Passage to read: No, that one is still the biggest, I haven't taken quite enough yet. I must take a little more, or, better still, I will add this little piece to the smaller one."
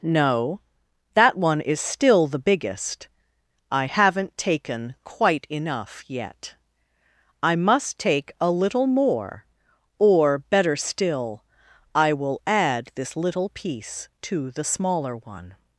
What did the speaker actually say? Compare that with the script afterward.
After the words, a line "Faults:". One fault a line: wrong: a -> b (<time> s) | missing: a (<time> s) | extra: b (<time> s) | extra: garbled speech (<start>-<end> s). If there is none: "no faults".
No, that one is still the biggest, I haven't taken quite enough yet. I must take a little more, or, better still, I will add this little piece to the smaller one."
Faults:
no faults